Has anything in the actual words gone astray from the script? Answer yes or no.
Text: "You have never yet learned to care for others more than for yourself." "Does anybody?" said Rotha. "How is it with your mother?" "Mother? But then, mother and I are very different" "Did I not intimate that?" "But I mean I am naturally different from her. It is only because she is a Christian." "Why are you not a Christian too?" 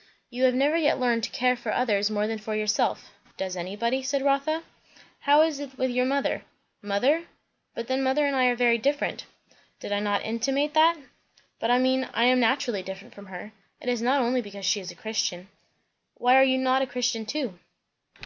yes